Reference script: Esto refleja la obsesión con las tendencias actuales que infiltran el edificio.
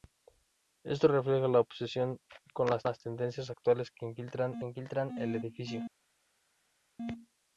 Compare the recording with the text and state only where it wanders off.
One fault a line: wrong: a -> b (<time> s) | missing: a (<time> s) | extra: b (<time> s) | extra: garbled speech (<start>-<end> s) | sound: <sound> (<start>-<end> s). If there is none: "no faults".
extra: las (2.9 s)
extra: infiltran (4.6 s)